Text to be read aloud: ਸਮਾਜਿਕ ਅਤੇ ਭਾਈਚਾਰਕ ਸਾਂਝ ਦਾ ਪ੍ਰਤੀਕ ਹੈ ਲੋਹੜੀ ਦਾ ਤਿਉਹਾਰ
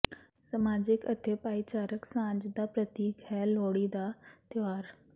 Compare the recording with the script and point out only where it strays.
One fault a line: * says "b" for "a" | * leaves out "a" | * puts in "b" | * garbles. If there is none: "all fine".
all fine